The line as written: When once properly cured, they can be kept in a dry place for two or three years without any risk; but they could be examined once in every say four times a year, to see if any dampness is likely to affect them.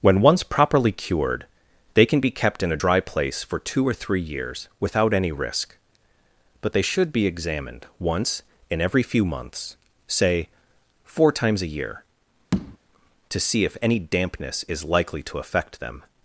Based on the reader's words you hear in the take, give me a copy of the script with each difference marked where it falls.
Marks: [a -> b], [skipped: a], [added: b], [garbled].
When once properly cured, they can be kept in a dry place for two or three years without any risk; but they [could -> should] be examined once in every [added: few months] say four times a year, to see if any dampness is likely to affect them.